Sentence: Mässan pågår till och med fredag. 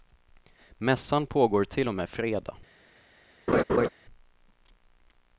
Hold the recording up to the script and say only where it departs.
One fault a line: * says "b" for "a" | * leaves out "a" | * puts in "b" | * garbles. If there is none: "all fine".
all fine